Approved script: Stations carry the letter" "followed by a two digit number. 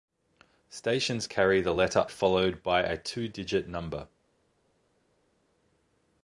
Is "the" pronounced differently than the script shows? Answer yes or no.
no